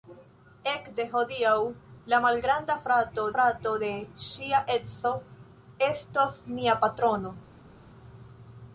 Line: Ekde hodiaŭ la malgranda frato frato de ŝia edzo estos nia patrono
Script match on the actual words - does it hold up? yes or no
yes